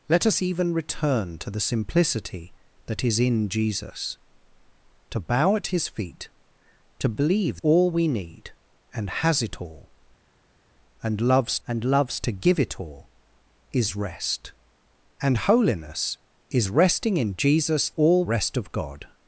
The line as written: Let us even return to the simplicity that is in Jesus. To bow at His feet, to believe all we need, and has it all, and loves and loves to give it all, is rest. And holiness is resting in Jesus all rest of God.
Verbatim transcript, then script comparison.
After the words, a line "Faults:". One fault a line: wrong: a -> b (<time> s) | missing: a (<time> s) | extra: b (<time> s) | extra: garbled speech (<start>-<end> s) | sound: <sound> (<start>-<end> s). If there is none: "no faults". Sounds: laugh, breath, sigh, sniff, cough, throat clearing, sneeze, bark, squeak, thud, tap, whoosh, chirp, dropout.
Let us even return to the simplicity that is in Jesus. To bow at His feet, to believe all we need, and has it all, and loves and loves to give it all, is rest. And holiness is resting in Jesus all rest of God.
Faults:
no faults